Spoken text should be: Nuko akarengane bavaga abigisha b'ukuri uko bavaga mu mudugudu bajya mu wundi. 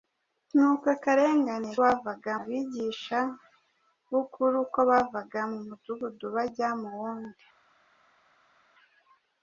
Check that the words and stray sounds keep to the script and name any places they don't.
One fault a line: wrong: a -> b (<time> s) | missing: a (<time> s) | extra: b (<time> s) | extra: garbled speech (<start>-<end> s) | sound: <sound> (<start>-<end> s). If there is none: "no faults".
no faults